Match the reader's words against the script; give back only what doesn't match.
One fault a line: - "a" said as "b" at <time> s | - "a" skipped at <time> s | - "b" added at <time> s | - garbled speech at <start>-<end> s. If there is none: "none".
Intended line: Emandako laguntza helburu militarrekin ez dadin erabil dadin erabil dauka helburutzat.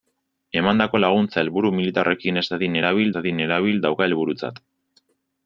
none